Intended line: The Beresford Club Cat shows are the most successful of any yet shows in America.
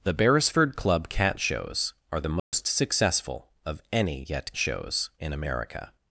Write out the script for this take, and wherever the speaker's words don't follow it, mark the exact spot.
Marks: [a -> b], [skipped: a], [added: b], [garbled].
The Beresford Club Cat shows are the most successful of any yet shows in America.